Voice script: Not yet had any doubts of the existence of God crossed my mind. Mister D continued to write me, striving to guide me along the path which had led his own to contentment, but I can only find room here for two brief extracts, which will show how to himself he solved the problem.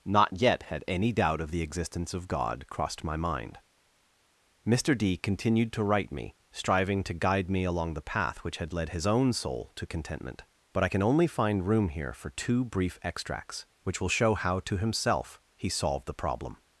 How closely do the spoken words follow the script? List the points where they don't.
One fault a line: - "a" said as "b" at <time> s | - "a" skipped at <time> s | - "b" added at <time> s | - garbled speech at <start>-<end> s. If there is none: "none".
- "doubts" said as "doubt" at 1.1 s
- "soul" added at 9.3 s